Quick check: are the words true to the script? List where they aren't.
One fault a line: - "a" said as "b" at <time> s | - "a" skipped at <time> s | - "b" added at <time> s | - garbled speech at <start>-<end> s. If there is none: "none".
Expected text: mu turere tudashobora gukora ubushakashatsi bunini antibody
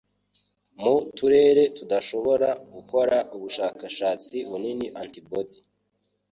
none